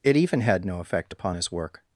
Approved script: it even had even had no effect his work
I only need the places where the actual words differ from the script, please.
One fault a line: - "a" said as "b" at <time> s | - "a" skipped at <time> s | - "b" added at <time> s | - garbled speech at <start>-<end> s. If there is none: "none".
- "even had" skipped at 0.7 s
- "upon" added at 1.1 s